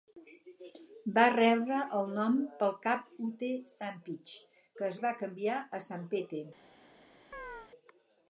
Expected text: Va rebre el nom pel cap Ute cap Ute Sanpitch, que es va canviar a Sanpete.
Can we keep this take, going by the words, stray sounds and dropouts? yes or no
no